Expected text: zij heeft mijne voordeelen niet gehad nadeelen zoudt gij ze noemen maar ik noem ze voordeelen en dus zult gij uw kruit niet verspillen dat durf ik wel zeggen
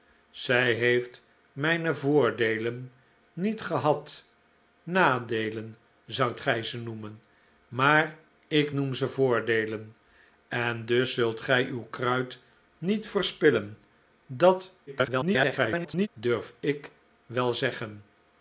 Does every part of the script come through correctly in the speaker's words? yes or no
no